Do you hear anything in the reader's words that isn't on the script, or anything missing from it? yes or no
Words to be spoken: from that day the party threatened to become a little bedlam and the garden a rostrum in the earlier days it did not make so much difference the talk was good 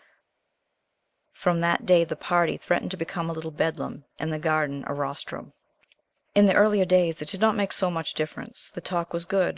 no